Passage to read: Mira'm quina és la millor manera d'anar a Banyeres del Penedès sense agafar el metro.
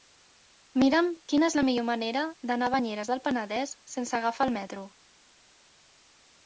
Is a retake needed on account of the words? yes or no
no